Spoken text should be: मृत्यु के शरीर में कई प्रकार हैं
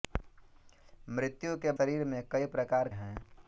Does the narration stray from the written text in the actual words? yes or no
no